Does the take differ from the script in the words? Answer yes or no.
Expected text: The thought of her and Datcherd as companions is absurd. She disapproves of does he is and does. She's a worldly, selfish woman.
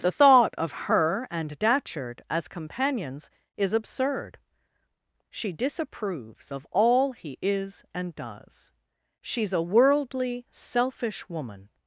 yes